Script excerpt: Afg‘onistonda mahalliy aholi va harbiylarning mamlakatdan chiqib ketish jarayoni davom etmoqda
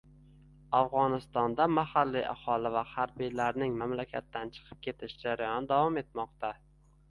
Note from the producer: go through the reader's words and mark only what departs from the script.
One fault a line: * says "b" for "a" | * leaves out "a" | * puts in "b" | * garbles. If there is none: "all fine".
all fine